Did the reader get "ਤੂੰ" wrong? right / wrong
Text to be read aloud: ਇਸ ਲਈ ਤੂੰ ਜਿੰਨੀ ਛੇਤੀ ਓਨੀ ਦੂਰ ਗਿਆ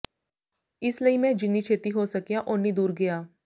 wrong